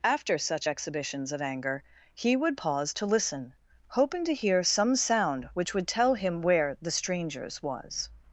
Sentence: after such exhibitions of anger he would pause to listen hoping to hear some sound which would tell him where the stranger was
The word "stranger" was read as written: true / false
false